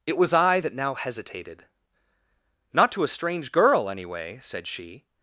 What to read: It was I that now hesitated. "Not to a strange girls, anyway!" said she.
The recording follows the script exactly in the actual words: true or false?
false